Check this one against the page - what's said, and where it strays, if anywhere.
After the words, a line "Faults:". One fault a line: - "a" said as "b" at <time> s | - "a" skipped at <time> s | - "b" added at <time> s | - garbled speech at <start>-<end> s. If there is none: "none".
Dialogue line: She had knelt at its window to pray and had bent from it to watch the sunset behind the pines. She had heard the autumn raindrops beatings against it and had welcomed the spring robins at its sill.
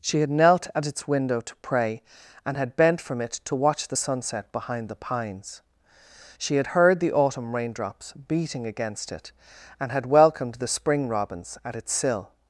She had knelt at its window to pray and had bent from it to watch the sunset behind the pines. She had heard the autumn raindrops beating against it and had welcomed the spring robins at its sill.
Faults:
- "beatings" said as "beating" at 8.1 s